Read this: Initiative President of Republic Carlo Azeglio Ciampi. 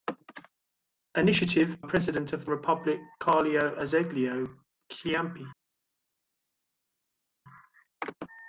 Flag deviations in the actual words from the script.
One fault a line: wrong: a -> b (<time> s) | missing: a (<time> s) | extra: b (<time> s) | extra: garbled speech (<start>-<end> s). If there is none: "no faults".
no faults